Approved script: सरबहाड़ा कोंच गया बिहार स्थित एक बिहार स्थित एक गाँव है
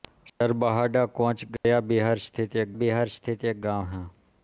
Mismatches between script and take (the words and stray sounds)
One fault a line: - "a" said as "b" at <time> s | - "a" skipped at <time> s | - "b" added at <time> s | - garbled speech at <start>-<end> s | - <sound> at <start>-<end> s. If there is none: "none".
- dropout at 1.6-1.6 s